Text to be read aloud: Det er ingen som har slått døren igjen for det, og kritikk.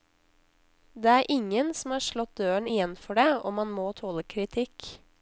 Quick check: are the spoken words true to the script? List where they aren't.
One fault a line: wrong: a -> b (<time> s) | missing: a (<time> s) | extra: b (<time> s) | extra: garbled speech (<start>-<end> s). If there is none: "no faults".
extra: man må tåle (3.6 s)